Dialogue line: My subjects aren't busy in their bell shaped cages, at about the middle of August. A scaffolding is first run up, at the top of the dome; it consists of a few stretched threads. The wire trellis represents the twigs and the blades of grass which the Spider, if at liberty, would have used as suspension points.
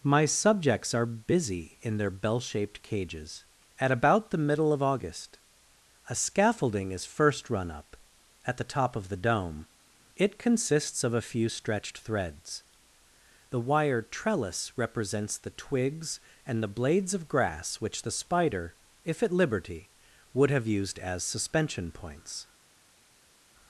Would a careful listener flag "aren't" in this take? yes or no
yes